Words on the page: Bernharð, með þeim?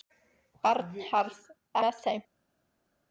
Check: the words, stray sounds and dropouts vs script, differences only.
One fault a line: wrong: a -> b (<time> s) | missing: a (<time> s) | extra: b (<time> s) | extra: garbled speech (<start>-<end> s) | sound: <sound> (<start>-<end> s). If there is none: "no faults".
no faults